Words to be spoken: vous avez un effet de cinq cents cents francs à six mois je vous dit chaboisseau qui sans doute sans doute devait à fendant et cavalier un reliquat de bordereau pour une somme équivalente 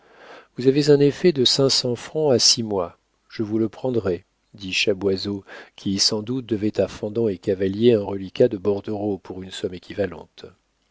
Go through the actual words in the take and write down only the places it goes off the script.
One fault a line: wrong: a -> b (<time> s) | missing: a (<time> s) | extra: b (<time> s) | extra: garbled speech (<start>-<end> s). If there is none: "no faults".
missing: cents (1.9 s)
extra: le prendrai (3.6 s)
missing: sans doute (6.5 s)